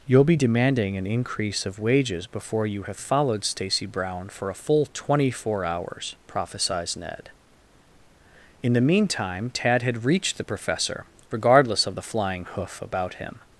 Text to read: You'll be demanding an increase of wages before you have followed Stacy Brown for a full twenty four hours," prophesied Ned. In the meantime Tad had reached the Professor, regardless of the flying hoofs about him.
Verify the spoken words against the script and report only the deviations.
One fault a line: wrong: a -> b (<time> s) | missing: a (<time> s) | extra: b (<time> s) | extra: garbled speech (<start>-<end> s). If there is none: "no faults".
wrong: hoofs -> hoof (12.5 s)